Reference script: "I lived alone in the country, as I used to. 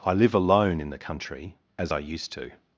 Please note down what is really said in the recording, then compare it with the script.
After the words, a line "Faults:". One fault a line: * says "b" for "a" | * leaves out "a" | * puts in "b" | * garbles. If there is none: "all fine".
"I live alone in the country, as I used to.
Faults:
* says "live" for "lived"